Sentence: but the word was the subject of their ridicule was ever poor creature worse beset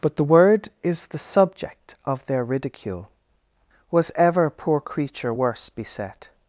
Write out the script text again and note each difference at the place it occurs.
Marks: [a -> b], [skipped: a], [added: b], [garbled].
but the word [was -> is] the subject of their ridicule was ever poor creature worse beset